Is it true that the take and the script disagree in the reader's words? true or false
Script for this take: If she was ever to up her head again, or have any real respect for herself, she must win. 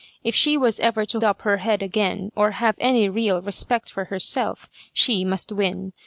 false